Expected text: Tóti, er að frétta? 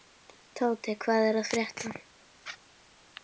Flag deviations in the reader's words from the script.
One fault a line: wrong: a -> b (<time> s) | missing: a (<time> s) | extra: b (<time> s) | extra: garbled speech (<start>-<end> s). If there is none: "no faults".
extra: hvað (1.0 s)